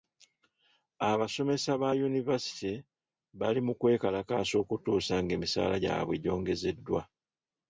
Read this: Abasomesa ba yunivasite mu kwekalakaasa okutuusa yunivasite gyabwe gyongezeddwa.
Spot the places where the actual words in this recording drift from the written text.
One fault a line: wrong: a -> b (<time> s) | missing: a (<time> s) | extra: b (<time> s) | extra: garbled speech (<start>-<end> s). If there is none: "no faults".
extra: bali (3.4 s)
wrong: yunivasite -> ng'emisaala (5.2 s)